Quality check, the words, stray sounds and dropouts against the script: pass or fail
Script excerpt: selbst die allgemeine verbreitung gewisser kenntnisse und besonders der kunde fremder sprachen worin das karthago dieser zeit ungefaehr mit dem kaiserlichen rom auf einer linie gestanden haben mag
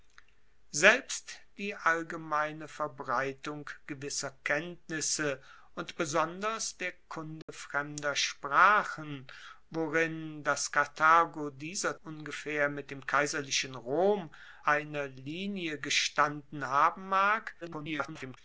fail